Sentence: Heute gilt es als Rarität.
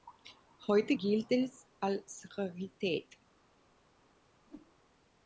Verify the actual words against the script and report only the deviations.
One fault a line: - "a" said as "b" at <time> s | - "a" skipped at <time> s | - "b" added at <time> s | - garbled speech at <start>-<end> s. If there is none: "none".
none